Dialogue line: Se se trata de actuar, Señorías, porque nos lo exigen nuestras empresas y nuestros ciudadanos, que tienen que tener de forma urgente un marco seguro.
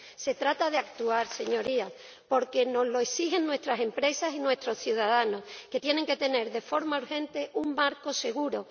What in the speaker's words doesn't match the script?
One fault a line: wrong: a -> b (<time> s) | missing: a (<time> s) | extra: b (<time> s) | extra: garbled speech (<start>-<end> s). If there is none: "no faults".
missing: se (0.3 s)